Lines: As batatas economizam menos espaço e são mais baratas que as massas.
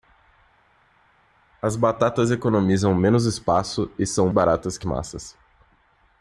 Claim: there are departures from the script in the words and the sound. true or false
true